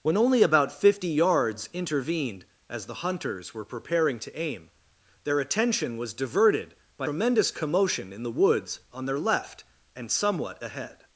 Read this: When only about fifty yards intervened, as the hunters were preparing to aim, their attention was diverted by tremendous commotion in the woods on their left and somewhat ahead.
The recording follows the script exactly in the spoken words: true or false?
true